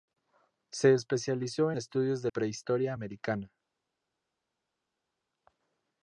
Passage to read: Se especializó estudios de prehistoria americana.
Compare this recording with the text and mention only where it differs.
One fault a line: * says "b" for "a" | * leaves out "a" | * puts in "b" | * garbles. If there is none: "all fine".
all fine